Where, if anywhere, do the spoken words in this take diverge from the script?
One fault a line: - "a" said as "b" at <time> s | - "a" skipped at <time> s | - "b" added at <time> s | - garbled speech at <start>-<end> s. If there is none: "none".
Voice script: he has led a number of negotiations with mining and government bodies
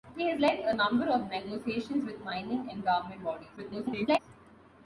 - garbled speech at 3.6-4.2 s